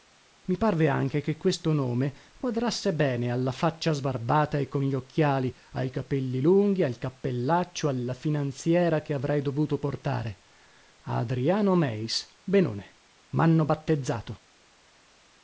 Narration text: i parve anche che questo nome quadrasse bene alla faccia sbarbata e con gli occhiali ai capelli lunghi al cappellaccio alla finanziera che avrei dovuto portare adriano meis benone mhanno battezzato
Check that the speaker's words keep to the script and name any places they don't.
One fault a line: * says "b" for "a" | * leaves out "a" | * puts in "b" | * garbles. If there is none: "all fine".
all fine